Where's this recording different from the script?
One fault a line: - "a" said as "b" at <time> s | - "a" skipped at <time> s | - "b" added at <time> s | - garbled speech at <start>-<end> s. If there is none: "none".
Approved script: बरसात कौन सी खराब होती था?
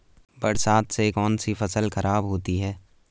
- "से" added at 0.9 s
- "फसल" added at 1.5 s
- "था" said as "है" at 2.6 s